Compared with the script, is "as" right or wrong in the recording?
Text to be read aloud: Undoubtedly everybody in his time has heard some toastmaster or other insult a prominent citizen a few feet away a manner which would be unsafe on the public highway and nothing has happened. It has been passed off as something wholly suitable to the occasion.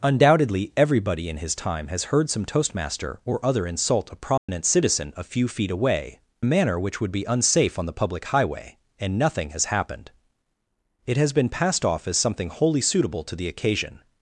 right